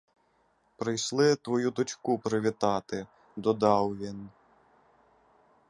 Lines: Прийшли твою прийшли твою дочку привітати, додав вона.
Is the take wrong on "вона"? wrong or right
wrong